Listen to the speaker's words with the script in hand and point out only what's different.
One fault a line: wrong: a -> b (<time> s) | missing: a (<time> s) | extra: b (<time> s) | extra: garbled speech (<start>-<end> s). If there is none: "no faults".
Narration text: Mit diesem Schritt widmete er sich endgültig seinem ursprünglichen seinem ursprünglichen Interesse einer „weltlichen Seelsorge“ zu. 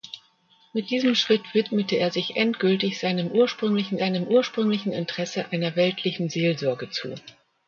no faults